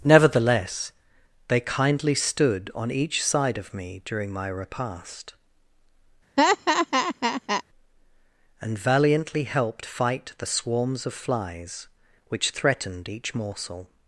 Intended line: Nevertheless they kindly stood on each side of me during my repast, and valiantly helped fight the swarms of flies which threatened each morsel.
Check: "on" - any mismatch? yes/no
no